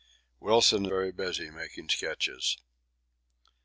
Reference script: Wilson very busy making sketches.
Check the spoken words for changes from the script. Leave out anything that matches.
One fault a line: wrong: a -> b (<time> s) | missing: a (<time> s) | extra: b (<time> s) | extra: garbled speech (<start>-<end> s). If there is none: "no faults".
no faults